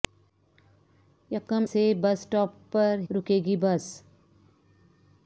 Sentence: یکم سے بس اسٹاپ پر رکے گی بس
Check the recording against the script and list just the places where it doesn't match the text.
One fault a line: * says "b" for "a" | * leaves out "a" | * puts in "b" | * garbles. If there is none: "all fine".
all fine